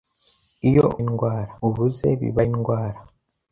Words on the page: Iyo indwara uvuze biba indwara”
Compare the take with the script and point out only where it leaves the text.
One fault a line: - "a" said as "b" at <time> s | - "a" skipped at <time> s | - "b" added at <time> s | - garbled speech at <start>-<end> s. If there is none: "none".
none